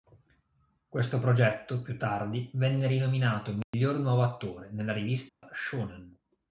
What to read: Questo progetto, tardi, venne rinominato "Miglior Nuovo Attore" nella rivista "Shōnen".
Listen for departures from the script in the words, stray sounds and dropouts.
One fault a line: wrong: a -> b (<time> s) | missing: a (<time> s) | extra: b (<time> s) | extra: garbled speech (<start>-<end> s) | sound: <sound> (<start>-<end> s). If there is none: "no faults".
extra: più (1.8 s)
sound: dropout (3.6-3.7 s)
sound: dropout (5.3-5.4 s)